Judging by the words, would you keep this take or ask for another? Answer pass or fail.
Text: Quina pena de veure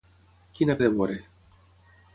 fail